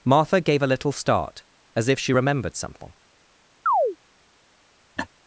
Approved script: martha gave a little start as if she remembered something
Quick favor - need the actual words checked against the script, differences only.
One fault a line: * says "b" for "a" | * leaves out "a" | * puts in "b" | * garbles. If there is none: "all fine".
all fine